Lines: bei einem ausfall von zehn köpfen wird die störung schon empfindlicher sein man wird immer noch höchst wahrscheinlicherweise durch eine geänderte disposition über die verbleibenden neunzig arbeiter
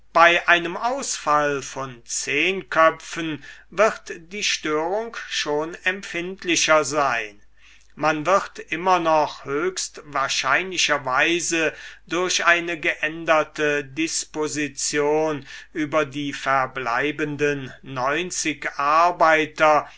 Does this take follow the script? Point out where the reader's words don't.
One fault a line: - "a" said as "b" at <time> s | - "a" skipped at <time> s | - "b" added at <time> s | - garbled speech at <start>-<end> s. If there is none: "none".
none